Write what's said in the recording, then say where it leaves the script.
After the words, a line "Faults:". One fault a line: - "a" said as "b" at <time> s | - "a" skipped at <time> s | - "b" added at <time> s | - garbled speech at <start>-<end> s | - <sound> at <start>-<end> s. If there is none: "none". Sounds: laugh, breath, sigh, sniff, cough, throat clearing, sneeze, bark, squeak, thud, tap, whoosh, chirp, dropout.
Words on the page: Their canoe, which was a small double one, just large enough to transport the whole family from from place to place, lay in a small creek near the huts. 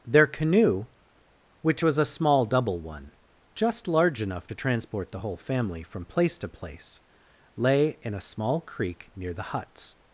Their canoe, which was a small double one, just large enough to transport the whole family from place to place, lay in a small creek near the huts.
Faults:
- "from" skipped at 6.0 s